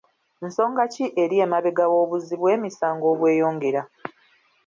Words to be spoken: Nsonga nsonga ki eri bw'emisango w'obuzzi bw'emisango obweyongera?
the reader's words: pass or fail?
fail